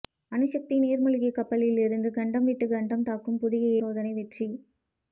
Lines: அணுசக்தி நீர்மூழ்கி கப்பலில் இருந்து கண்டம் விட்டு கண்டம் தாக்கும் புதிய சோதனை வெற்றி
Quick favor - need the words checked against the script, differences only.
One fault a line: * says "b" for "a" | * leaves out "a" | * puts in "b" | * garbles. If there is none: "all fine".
all fine